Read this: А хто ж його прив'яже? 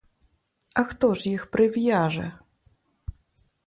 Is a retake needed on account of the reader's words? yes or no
yes